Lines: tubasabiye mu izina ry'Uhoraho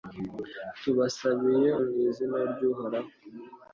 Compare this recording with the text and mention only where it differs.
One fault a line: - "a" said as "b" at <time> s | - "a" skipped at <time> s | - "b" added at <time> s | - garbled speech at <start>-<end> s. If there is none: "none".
none